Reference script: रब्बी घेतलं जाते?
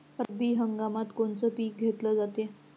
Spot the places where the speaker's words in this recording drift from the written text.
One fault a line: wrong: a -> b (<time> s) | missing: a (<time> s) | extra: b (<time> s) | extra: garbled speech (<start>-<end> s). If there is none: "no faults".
extra: हंगामात कोनचं पिक (0.6 s)